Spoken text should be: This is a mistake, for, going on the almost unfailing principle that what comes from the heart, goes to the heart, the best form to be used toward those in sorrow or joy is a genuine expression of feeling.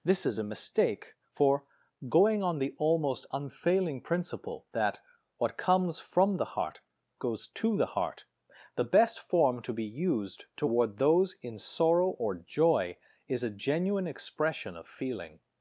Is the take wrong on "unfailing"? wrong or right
right